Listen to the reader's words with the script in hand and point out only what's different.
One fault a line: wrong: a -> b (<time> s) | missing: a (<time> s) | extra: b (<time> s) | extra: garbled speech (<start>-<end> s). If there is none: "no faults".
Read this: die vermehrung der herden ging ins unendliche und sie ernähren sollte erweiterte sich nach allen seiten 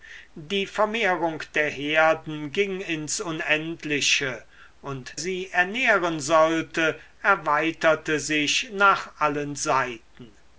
no faults